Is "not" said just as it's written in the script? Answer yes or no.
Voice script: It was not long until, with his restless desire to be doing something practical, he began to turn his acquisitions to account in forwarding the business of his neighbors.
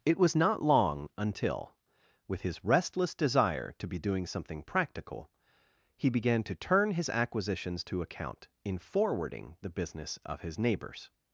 yes